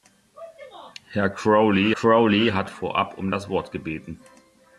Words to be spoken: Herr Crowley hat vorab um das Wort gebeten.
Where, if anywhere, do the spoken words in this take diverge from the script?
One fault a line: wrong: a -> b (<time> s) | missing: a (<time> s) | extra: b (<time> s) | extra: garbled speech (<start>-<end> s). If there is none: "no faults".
extra: Crowley (1.9 s)